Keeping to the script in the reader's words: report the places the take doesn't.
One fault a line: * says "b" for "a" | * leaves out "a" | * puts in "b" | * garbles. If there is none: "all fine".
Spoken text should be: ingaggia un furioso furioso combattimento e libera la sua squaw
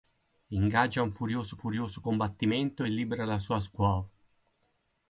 all fine